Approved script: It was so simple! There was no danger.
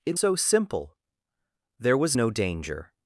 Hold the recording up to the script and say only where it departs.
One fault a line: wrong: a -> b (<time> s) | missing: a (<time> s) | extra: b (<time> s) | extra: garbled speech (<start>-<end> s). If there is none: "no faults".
missing: was (0.2 s)